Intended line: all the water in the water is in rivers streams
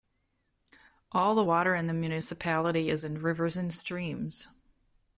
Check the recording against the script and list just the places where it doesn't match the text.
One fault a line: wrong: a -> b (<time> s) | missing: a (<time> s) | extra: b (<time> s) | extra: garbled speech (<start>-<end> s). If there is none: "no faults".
wrong: water -> municipality (1.9 s)
extra: and (3.6 s)